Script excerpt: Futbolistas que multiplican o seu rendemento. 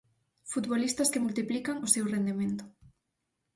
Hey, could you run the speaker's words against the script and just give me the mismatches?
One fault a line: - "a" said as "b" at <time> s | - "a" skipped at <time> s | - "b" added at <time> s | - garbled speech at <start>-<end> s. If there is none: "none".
none